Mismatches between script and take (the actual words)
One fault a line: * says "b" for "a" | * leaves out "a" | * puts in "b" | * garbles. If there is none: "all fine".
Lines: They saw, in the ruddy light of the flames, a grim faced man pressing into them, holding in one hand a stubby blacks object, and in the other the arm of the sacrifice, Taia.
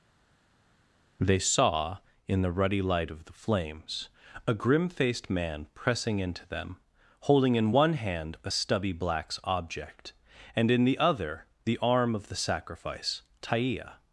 all fine